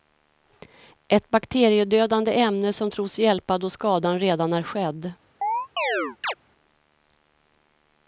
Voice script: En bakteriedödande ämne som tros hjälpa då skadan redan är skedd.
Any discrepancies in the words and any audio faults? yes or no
yes